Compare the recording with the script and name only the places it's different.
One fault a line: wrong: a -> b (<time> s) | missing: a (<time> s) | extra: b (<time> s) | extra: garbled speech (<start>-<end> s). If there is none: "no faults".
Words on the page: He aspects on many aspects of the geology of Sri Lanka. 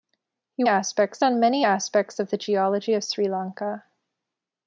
no faults